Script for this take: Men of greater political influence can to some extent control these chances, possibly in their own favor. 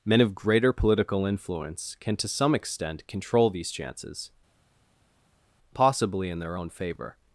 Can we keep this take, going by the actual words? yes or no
yes